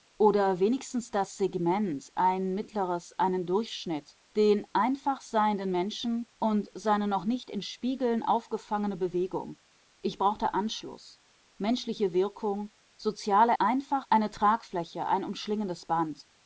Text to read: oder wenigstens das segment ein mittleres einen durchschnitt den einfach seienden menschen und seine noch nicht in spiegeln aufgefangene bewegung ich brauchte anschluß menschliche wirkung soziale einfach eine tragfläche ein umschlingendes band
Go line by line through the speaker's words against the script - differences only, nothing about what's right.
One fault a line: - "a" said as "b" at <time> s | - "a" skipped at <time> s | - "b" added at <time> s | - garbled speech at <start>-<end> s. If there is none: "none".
none